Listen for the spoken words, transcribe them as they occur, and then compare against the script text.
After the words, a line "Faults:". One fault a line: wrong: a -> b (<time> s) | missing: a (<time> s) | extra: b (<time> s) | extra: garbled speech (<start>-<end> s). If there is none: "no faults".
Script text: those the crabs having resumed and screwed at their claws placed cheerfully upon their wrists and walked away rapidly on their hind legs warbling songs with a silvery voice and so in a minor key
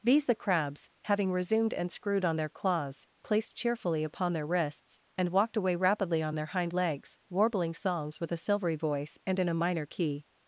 these the crabs having resumed and screwed on their claws placed cheerfully upon their wrists and walked away rapidly on their hind legs warbling songs with a silvery voice and in a minor key
Faults:
wrong: those -> these (0.0 s)
wrong: at -> on (2.2 s)
missing: so (9.4 s)